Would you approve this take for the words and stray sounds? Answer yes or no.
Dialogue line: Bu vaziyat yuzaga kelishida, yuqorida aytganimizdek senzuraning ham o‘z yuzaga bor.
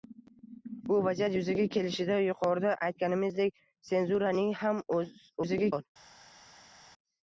yes